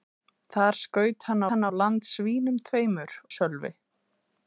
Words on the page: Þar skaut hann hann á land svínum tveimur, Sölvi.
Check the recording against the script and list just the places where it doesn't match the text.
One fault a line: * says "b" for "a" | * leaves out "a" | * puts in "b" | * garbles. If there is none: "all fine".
all fine